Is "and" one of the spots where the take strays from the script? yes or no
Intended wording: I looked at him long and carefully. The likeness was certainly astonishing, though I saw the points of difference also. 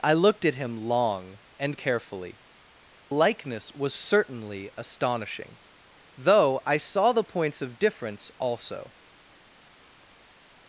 no